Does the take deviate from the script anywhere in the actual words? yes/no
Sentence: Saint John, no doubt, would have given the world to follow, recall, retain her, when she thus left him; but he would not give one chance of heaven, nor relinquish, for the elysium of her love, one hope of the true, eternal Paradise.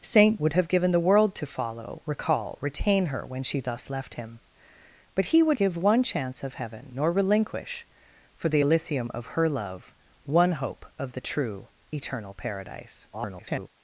yes